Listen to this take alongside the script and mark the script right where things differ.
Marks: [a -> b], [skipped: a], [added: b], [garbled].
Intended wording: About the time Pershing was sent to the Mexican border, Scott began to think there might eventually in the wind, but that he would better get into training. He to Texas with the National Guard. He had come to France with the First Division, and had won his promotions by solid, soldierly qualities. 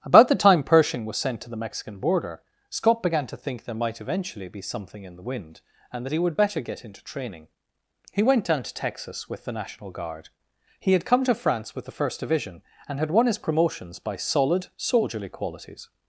About the time Pershing was sent to the Mexican border, Scott began to think there might eventually [added: be something] in the wind, [but -> and] that he would better get into training. He [added: went down] to Texas with the National Guard. He had come to France with the First Division, and had won his promotions by solid, soldierly qualities.